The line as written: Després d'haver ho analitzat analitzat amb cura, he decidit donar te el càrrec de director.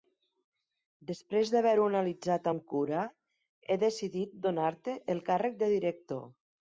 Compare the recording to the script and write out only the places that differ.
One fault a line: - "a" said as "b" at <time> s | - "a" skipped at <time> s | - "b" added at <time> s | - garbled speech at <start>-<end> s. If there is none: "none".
- "analitzat" skipped at 2.5 s